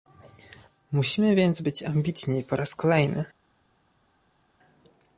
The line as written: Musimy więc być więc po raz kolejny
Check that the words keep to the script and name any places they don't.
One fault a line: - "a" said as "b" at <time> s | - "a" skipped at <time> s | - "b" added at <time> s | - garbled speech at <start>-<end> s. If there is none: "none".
- "więc" said as "ambitni" at 1.8 s